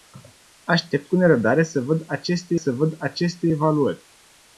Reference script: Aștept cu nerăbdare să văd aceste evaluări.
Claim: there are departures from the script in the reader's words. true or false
true